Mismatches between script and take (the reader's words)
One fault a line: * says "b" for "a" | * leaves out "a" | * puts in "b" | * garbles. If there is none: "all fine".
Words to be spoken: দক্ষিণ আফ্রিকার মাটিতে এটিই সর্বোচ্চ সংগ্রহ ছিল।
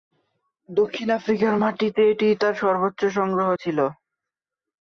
* puts in "তার"